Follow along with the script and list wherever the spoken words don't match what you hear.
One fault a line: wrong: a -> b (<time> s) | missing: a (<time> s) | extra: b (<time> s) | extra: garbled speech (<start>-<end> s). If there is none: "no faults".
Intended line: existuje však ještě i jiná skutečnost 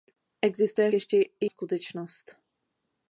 missing: však (0.9 s)
missing: jiná (1.4 s)